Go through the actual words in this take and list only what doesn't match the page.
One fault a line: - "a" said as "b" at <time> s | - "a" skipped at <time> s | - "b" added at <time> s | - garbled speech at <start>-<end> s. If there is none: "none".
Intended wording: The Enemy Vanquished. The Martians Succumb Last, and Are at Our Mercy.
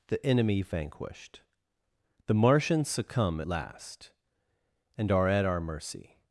none